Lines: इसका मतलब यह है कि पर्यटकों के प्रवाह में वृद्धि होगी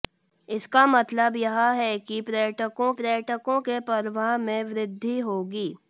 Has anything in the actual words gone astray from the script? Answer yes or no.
yes